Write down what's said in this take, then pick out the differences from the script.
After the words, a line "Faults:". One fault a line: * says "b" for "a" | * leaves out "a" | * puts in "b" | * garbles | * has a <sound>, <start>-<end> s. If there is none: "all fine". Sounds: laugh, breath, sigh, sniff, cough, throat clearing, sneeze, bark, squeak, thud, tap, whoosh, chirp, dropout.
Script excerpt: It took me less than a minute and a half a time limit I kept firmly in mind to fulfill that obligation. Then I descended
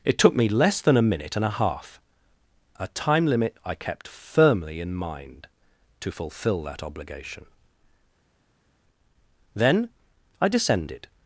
It took me less than a minute and a half a time limit I kept firmly in mind to fulfill that obligation. Then I descended
Faults:
all fine